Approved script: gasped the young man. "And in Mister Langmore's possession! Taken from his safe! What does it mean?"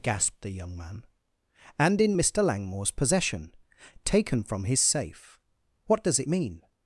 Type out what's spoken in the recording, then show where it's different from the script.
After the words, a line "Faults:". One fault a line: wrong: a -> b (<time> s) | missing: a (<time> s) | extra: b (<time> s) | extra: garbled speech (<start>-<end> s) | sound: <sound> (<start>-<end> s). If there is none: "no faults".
gasped the young man. "And in Mister Langmore's possession! Taken from his safe! What does it mean?"
Faults:
no faults